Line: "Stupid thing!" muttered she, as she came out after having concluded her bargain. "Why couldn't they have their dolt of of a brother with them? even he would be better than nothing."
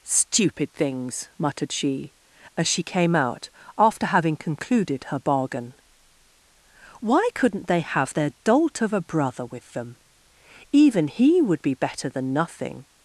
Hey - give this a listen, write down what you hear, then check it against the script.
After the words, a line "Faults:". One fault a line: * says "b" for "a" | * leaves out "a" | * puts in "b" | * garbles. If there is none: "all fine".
"Stupid things!" muttered she, as she came out after having concluded her bargain. "Why couldn't they have their dolt of a brother with them? even he would be better than nothing."
Faults:
* says "things" for "thing"
* leaves out "of"